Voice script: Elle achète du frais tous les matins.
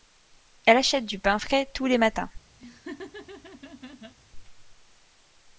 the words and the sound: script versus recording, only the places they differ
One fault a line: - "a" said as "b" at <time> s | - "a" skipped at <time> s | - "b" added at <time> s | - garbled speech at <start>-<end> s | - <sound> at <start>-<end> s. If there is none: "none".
- "pain" added at 1.2 s
- laugh at 2.6-4.1 s